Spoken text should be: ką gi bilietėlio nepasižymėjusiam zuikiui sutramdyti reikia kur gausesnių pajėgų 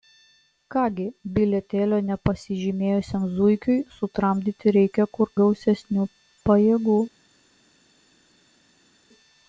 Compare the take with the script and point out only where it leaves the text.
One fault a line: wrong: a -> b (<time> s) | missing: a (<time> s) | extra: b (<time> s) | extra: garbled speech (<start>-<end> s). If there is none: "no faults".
no faults